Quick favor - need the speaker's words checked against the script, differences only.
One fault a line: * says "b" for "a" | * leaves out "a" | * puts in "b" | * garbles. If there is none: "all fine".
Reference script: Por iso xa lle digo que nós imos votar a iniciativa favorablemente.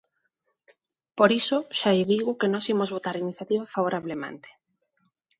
all fine